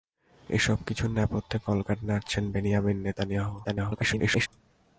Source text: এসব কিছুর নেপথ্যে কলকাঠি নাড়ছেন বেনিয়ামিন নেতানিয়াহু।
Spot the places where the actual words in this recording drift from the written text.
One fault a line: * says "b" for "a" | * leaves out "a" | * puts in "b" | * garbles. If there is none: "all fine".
* garbles